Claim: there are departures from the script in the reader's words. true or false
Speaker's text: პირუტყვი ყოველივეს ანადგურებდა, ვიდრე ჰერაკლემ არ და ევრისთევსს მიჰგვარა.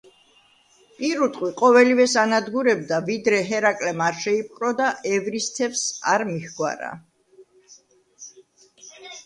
true